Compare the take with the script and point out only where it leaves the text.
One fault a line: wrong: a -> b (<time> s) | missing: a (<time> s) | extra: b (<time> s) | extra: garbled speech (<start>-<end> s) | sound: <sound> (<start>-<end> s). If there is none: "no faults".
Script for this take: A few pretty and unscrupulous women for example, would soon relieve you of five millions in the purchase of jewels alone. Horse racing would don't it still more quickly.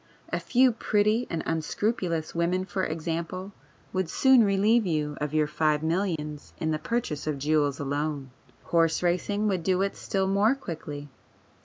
extra: your (5.3 s)
sound: dropout (6.2-6.2 s)
wrong: don't -> do (9.6 s)